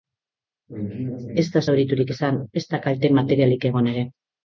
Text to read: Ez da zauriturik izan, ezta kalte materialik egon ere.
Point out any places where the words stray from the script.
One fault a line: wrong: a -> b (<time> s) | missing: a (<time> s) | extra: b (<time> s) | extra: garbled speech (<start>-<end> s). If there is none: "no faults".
no faults